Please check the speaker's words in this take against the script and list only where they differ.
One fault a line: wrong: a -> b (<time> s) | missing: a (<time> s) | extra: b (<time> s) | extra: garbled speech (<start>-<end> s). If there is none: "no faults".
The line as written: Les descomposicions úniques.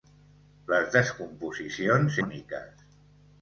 no faults